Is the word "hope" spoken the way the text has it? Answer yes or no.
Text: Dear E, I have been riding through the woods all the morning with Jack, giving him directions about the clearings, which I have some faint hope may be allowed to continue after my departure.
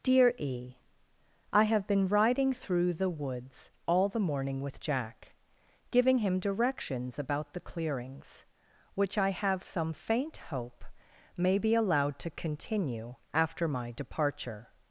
yes